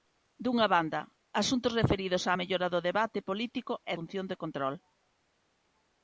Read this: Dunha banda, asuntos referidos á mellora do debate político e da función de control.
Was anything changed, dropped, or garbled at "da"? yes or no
yes